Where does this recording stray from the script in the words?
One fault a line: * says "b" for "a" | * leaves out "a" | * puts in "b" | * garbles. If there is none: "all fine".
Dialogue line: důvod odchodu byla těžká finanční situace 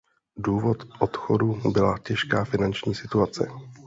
all fine